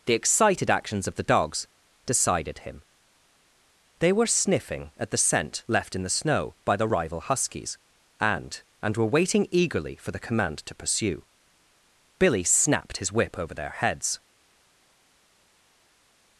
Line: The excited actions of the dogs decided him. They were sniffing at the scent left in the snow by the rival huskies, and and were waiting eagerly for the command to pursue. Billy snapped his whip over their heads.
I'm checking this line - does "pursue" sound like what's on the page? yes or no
yes